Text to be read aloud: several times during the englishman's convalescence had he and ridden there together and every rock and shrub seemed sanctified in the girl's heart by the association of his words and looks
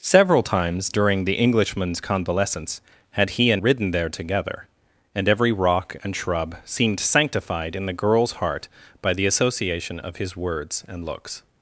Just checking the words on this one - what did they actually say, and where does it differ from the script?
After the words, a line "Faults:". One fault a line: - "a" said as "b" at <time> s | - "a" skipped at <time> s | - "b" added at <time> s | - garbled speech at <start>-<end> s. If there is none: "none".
several times during the englishman's convalescence had he and ridden there together and every rock and shrub seemed sanctified in the girl's heart by the association of his words and looks
Faults:
none